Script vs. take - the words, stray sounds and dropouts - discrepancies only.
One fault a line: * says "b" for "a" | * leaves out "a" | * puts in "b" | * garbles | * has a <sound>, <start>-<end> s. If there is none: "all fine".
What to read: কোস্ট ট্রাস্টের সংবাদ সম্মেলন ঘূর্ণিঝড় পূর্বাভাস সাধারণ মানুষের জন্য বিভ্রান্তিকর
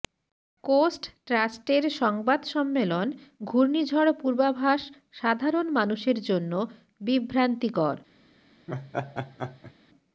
* has a laugh, 8.7-9.7 s